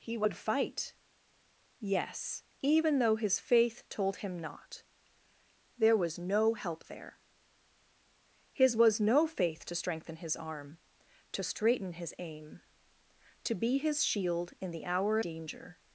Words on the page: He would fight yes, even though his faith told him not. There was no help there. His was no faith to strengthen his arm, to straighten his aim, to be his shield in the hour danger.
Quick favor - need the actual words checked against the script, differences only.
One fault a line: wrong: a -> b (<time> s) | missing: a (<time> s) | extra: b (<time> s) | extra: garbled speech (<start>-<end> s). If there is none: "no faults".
no faults